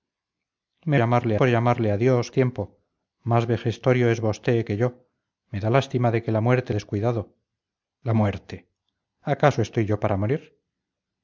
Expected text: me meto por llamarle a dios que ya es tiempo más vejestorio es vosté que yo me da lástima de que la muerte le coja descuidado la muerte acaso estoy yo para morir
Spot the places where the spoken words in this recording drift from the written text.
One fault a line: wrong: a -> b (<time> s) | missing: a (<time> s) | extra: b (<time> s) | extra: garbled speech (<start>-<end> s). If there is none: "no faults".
wrong: meto -> llamarle (0.9 s)
missing: que ya es (2.3 s)
missing: le coja (6.7 s)